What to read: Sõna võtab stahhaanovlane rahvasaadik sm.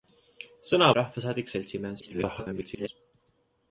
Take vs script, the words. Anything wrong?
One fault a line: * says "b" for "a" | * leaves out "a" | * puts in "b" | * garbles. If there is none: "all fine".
* leaves out "võtab stahhaanovlane"
* garbles